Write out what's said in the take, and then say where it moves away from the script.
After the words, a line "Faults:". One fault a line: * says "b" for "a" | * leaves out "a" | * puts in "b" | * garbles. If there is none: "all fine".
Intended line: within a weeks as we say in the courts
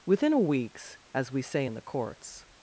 within a weeks as we say in the courts
Faults:
all fine